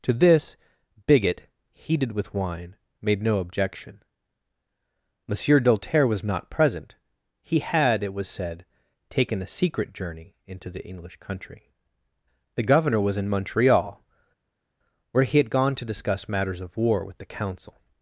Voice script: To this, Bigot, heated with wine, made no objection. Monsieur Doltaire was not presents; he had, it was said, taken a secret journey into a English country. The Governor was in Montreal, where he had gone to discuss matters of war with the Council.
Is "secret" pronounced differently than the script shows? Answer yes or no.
no